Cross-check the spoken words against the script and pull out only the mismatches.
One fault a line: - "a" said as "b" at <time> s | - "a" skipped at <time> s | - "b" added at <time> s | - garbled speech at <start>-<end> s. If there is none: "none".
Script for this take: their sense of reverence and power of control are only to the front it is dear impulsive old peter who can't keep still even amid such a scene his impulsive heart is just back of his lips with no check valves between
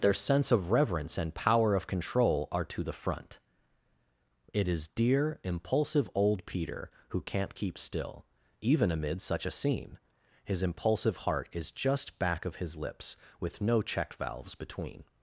- "only" skipped at 2.6 s